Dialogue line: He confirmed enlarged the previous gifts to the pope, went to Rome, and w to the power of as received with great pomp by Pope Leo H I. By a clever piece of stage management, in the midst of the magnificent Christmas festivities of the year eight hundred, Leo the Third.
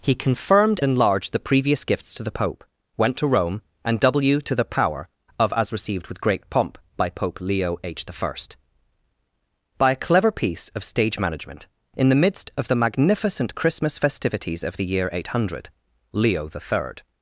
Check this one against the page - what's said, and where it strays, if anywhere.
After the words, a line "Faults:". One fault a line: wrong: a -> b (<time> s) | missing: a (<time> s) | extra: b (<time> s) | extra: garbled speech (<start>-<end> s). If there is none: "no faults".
He confirmed enlarged the previous gifts to the pope, went to Rome, and w to the power of as received with great pomp by Pope Leo H I. By a clever piece of stage management, in the midst of the magnificent Christmas festivities of the year eight hundred, Leo the Third.
Faults:
no faults